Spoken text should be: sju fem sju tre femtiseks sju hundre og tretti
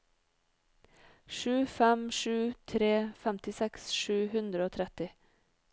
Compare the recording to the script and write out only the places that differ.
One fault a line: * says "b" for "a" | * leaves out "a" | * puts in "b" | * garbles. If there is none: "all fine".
all fine